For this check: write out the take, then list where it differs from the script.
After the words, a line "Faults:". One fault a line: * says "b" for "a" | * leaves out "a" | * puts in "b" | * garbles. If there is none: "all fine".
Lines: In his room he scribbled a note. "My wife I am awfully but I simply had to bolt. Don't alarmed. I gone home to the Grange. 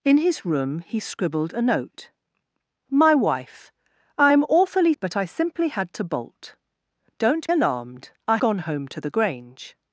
In his room he scribbled a note. "My wife I am awfully but I simply had to bolt. Don't alarmed. I gone home to the Grange.
Faults:
all fine